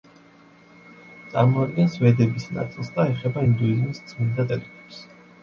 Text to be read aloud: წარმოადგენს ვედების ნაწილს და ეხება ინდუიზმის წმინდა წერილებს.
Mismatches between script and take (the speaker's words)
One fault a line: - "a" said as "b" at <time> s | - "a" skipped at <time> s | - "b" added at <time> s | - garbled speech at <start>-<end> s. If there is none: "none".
none